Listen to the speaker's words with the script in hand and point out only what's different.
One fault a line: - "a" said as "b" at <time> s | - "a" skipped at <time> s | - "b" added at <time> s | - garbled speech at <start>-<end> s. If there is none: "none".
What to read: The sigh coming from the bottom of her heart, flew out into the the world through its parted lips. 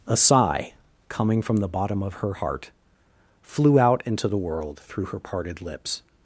- "The" said as "A" at 0.1 s
- "the" skipped at 4.4 s
- "its" said as "her" at 5.0 s